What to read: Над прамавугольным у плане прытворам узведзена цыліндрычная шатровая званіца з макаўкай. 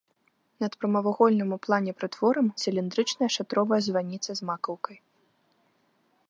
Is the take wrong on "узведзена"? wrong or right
wrong